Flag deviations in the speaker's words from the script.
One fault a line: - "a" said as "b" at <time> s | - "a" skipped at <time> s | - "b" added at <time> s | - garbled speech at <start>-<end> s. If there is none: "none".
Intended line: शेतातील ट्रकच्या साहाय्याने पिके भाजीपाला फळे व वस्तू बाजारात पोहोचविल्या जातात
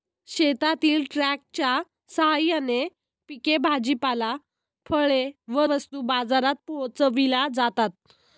none